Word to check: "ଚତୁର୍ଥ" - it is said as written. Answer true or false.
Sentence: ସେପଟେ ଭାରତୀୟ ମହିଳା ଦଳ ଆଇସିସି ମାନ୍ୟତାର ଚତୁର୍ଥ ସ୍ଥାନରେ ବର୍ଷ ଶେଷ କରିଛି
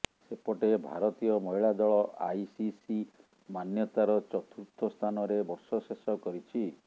true